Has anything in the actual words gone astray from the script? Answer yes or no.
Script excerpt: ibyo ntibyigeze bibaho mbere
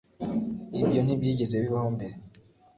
no